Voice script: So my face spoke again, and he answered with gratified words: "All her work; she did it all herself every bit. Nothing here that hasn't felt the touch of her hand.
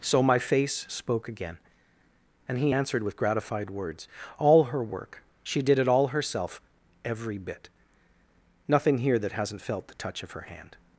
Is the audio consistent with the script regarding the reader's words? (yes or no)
yes